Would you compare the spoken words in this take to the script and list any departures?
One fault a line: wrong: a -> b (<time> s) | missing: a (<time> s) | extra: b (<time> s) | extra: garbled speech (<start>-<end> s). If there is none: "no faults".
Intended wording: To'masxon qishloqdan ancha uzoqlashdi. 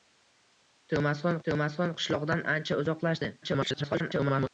extra: to'masxon (1.5 s)
extra: garbled speech (3.4-4.5 s)